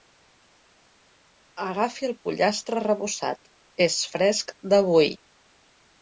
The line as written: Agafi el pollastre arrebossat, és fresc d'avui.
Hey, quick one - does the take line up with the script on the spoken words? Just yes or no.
yes